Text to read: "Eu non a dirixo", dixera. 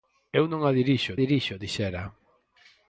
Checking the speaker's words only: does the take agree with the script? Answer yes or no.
no